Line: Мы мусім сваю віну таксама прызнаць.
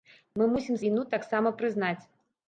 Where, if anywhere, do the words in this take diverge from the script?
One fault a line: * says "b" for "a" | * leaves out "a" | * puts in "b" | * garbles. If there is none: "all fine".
* leaves out "сваю"